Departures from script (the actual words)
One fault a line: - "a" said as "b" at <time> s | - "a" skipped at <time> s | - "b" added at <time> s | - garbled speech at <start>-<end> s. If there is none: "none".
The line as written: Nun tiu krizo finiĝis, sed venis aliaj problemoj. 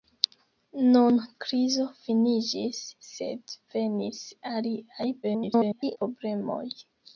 - "tiu" skipped at 1.2 s
- garbled speech at 5.2-6.0 s